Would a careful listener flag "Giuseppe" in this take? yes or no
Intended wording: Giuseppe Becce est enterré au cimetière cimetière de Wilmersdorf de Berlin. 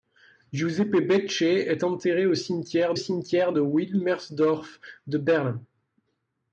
no